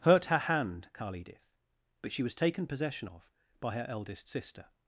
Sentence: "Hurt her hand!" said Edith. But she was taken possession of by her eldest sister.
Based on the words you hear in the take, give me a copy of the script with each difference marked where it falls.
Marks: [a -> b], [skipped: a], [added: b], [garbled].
"Hurt her hand!" [said -> carl] Edith. But she was taken possession of by her eldest sister.